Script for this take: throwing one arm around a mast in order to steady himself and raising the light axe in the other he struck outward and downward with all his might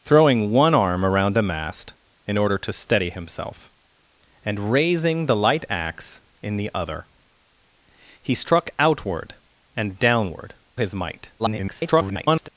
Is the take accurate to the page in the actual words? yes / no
no